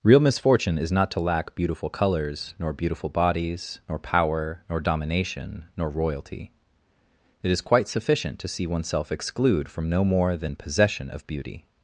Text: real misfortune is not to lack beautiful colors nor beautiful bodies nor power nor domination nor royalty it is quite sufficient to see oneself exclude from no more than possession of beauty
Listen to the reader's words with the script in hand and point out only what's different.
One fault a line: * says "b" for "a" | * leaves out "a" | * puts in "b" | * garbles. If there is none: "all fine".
all fine